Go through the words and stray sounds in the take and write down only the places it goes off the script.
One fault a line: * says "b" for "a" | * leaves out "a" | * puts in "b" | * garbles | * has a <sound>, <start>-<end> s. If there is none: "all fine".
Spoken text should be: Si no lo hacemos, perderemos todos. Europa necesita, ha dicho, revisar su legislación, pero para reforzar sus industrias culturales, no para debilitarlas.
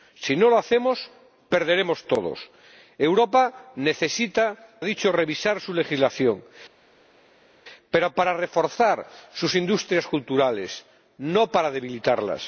all fine